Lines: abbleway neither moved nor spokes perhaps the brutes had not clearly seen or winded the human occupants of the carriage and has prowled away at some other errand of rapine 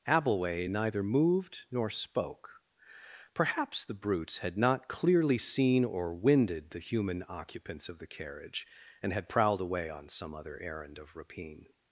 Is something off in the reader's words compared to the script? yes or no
yes